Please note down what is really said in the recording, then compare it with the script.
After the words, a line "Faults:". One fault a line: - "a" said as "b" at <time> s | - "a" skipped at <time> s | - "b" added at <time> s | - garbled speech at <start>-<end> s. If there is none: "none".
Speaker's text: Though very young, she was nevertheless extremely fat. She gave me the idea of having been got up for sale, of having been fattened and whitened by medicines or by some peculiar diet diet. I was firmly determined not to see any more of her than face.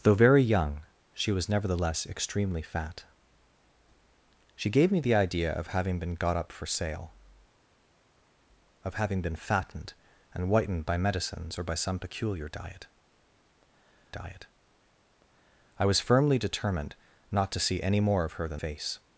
Though very young, she was nevertheless extremely fat. She gave me the idea of having been got up for sale, of having been fattened and whitened by medicines or by some peculiar diet diet. I was firmly determined not to see any more of her than face.
Faults:
none